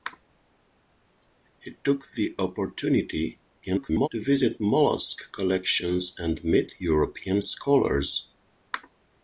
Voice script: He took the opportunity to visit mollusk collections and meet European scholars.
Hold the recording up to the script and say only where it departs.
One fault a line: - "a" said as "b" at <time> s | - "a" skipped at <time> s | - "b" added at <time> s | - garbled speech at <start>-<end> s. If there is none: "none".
- garbled speech at 3.6-4.1 s